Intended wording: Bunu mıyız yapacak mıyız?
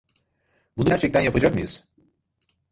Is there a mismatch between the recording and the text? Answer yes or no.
yes